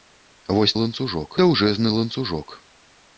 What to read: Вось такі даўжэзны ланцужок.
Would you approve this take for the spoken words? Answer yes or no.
no